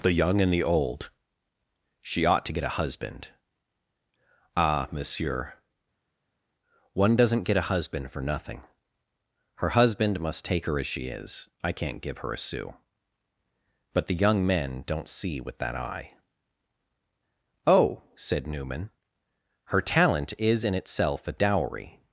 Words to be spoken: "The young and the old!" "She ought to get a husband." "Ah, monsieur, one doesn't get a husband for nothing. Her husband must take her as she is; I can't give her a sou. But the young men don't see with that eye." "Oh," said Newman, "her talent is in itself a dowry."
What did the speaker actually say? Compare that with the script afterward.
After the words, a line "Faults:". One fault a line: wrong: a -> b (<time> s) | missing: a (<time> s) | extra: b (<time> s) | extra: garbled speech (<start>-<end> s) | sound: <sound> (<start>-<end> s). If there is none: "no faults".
"The young and the old!" "She ought to get a husband." "Ah, monsieur, one doesn't get a husband for nothing. Her husband must take her as she is; I can't give her a sou. But the young men don't see with that eye." "Oh," said Newman, "her talent is in itself a dowry."
Faults:
no faults